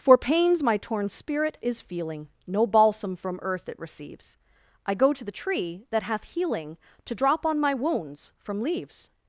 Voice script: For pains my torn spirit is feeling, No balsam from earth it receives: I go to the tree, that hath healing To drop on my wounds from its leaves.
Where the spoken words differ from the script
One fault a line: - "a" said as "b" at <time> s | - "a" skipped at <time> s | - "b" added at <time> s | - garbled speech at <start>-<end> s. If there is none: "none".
- "its" skipped at 8.6 s